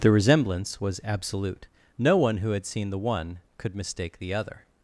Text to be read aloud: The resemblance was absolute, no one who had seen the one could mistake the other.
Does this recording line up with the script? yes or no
yes